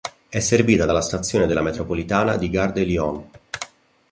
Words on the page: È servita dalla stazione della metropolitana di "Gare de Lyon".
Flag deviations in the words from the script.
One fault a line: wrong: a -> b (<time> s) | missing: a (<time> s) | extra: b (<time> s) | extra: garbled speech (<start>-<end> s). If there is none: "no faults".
no faults